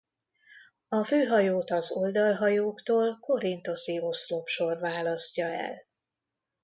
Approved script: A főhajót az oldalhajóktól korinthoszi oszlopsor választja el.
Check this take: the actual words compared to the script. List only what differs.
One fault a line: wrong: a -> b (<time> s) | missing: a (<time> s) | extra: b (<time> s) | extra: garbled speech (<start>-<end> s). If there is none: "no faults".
no faults